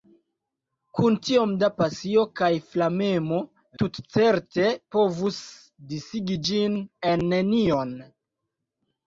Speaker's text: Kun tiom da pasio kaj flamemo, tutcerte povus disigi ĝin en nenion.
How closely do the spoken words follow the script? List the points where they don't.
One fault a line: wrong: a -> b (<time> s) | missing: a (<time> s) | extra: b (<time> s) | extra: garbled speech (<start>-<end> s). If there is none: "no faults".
no faults